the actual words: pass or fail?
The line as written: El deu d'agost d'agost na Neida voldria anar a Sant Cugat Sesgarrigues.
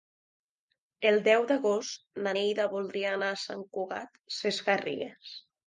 fail